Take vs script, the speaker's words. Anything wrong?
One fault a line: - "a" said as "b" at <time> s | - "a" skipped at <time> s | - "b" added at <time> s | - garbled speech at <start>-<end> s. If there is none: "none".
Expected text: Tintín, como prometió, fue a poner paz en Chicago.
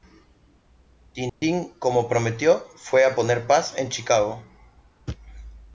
none